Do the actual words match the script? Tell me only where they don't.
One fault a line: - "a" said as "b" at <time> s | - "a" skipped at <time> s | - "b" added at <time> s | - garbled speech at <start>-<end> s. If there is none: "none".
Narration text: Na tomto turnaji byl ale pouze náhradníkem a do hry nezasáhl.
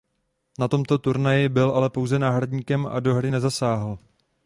none